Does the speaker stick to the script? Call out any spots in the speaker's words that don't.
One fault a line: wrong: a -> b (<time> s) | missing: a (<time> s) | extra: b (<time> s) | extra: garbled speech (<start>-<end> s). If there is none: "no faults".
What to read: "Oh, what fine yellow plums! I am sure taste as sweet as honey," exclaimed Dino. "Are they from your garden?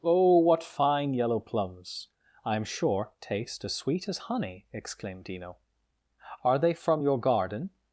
no faults